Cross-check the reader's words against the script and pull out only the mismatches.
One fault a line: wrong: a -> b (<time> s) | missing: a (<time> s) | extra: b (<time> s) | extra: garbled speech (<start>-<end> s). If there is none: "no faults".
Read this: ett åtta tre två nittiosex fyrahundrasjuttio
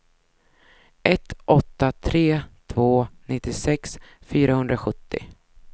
no faults